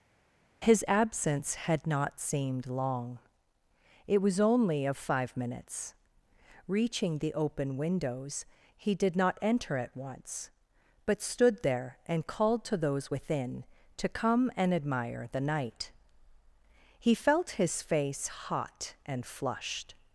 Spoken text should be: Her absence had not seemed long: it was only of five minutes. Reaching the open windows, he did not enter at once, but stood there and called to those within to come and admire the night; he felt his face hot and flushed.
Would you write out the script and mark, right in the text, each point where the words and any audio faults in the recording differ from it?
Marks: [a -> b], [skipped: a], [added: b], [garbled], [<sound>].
[Her -> His] absence had not seemed long: it was only of five minutes. Reaching the open windows, he did not enter at once, but stood there and called to those within to come and admire the night; he felt his face hot and flushed.